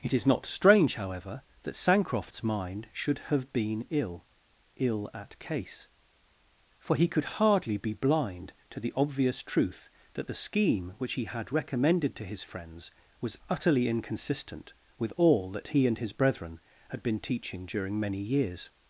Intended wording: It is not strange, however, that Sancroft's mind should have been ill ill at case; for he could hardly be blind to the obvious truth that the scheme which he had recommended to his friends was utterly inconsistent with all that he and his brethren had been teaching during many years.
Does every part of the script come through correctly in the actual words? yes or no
yes